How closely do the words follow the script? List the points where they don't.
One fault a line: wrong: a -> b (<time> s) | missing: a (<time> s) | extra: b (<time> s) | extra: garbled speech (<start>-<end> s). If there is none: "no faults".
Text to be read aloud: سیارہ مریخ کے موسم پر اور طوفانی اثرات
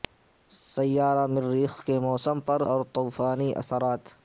no faults